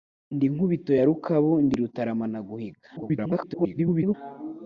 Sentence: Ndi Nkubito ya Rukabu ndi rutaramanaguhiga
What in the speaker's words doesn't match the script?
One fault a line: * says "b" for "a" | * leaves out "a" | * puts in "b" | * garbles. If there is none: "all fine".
* garbles